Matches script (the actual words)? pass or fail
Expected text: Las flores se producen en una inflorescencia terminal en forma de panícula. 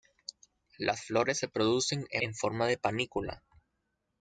fail